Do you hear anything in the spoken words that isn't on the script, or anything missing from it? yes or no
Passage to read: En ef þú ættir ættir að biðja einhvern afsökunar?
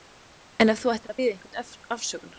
yes